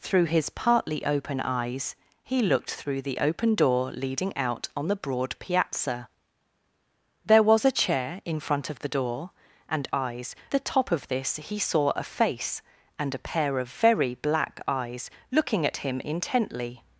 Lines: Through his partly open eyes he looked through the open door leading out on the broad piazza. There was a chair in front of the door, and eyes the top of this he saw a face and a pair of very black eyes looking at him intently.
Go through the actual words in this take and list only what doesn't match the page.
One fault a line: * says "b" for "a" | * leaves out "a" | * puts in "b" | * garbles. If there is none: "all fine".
all fine